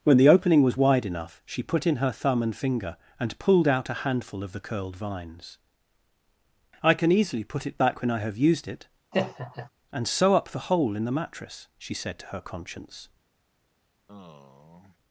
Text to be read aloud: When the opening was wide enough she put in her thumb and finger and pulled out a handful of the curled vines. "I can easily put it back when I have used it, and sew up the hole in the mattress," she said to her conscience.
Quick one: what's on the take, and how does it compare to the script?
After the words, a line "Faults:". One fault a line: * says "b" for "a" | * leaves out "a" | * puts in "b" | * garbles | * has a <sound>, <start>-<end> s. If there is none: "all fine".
When the opening was wide enough she put in her thumb and finger and pulled out a handful of the curled vines. "I can easily put it back when I have used it, and sew up the hole in the mattress," she said to her conscience.
Faults:
* has a laugh, 9.1-9.7 s
* has a sigh, 14.1-15.0 s